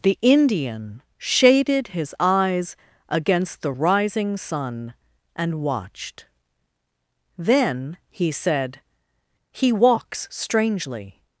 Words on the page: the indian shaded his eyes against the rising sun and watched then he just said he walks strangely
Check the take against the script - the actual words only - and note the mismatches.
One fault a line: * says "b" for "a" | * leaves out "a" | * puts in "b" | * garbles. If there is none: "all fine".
* leaves out "just"